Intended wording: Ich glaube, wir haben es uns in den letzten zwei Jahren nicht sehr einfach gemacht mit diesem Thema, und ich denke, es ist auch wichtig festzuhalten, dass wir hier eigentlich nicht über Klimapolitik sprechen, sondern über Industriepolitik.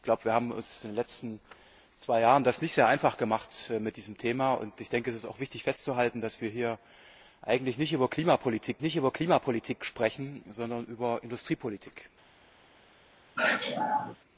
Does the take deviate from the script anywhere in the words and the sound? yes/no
yes